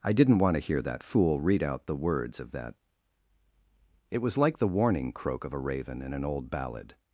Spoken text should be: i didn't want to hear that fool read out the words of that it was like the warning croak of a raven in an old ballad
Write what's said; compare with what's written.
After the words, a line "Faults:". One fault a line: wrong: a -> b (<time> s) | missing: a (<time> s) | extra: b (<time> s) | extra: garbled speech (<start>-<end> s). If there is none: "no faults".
i didn't want to hear that fool read out the words of that it was like the warning croak of a raven in an old ballad
Faults:
no faults